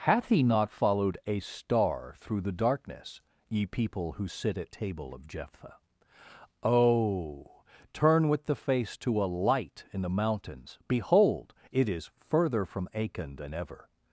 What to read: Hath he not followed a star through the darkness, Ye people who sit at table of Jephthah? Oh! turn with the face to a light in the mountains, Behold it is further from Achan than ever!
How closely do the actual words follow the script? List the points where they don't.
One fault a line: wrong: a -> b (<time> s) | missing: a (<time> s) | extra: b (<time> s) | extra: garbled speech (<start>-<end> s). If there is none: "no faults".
no faults